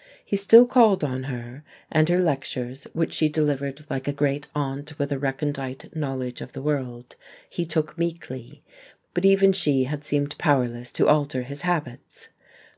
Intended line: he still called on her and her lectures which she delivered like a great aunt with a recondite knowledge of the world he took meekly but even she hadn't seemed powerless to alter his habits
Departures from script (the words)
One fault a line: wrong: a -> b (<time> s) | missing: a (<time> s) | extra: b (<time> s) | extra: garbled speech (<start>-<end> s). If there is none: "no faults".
wrong: hadn't -> had (9.8 s)